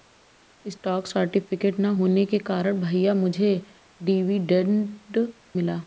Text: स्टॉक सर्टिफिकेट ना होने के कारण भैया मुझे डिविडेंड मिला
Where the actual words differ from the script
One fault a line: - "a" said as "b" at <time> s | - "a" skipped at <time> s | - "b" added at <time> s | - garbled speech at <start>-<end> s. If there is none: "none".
none